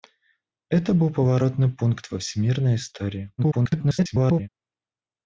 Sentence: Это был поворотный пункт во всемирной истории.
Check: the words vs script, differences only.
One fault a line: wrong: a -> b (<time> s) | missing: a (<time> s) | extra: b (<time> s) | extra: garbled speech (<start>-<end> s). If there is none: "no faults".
extra: garbled speech (3.4-4.5 s)